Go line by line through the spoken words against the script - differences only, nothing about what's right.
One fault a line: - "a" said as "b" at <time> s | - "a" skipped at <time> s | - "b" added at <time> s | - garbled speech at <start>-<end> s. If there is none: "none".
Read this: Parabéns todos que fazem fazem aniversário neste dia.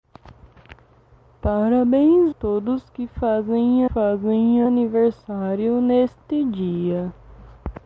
none